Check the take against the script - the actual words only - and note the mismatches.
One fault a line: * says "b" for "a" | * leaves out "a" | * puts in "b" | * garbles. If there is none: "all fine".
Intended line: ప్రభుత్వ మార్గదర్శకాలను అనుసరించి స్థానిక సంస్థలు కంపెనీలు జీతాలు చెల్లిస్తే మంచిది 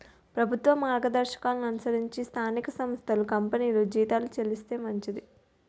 all fine